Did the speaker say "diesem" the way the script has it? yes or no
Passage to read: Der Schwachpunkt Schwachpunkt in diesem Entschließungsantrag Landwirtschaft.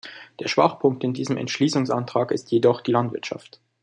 yes